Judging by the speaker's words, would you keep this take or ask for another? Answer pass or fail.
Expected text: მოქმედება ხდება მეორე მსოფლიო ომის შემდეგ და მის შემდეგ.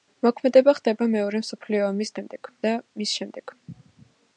pass